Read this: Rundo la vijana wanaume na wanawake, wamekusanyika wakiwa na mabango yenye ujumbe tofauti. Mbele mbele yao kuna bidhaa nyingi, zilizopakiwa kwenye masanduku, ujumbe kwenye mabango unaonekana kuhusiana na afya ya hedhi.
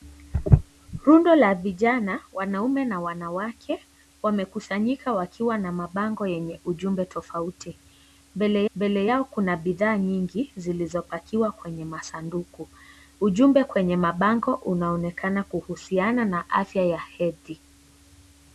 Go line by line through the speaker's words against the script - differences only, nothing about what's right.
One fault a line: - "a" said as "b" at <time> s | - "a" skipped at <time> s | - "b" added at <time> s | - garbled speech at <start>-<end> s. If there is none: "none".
none